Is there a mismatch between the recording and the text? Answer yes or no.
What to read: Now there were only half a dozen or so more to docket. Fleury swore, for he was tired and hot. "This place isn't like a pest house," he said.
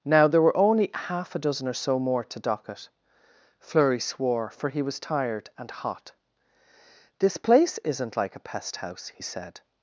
no